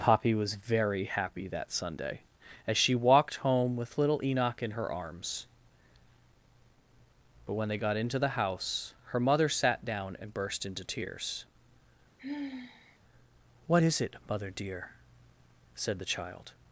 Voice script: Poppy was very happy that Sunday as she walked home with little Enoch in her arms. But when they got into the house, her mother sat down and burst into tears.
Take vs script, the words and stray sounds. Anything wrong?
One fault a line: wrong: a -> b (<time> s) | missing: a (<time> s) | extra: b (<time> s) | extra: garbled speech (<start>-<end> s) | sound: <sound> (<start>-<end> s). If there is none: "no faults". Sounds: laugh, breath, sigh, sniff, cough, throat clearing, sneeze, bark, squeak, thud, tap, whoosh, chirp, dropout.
sound: sigh (12.2-13.0 s)
extra: What is it mother dear said the child (13.7 s)